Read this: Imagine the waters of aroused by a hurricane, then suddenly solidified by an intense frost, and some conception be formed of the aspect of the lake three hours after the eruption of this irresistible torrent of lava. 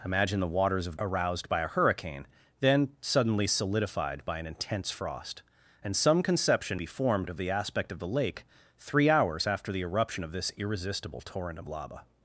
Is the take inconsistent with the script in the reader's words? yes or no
no